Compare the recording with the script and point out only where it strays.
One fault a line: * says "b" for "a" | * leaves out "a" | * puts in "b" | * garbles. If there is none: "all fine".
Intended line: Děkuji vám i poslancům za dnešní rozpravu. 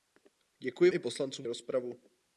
* leaves out "vám"
* leaves out "za dnešní"